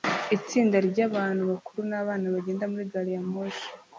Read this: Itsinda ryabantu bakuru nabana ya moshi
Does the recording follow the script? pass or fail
fail